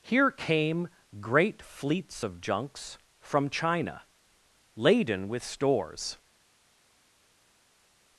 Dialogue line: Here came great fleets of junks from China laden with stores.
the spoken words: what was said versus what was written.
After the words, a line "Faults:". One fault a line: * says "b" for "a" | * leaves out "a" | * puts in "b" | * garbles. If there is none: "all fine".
Here came great fleets of junks from China laden with stores.
Faults:
all fine